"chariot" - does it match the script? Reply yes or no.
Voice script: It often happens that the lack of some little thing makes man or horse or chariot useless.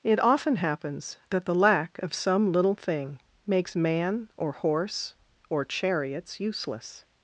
no